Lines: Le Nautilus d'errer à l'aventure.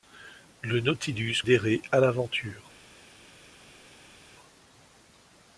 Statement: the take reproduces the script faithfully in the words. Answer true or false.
true